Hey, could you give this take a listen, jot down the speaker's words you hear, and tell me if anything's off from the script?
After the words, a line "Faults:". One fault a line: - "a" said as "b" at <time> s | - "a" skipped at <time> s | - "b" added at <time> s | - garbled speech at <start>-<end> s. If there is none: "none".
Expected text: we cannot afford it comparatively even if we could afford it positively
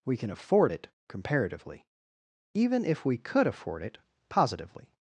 we can afford it comparatively even if we could afford it positively
Faults:
- "cannot" said as "can" at 0.2 s